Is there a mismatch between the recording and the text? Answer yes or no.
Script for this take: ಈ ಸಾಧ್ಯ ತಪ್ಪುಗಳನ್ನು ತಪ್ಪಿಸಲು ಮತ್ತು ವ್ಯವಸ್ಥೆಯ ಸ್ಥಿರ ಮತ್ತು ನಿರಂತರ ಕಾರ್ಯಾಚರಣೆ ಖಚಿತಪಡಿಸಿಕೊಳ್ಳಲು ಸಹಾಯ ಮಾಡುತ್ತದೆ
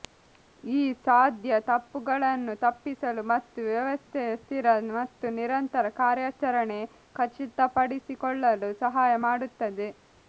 no